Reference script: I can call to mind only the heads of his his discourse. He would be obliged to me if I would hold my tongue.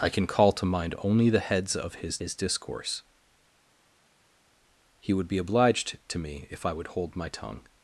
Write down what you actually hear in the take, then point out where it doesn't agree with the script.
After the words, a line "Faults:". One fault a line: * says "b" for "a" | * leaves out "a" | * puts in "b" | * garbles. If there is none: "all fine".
I can call to mind only the heads of his his discourse. He would be obliged to me if I would hold my tongue.
Faults:
all fine